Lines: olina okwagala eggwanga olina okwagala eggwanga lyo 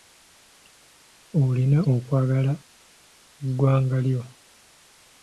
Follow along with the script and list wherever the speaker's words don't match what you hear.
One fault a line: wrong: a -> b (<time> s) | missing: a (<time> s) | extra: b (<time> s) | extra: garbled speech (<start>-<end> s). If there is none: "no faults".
missing: olina okwagala eggwanga (4.0 s)